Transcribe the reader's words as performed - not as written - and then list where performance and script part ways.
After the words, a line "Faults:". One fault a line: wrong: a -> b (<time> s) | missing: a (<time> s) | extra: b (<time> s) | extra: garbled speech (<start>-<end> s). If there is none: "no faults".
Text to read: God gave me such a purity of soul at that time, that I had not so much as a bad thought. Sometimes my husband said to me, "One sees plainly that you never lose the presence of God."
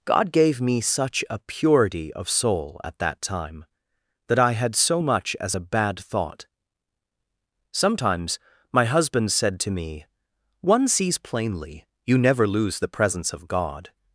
God gave me such a purity of soul at that time, that I had so much as a bad thought. Sometimes my husband said to me, "One sees plainly you never lose the presence of God."
Faults:
missing: not (4.8 s)
missing: that (11.9 s)